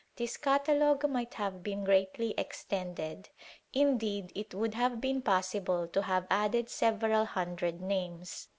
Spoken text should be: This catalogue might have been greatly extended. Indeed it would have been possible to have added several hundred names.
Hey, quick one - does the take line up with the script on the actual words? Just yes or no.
yes